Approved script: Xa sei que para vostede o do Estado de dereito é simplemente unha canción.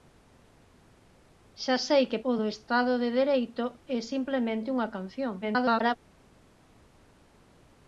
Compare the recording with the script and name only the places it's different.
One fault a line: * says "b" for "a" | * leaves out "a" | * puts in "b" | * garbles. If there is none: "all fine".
* leaves out "para vostede"
* garbles